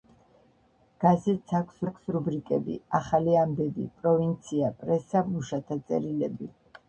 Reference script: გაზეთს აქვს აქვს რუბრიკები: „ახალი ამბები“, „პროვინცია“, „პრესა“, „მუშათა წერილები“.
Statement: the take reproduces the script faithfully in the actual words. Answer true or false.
true